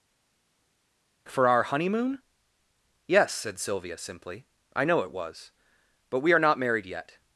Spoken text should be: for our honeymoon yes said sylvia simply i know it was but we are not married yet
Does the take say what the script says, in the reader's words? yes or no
yes